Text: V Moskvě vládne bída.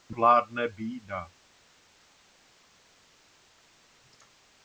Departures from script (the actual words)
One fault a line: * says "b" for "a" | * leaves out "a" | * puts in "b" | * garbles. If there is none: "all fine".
* leaves out "Moskvě"